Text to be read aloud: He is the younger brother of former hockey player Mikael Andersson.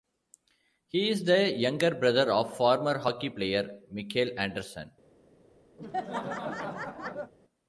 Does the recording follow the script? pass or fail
pass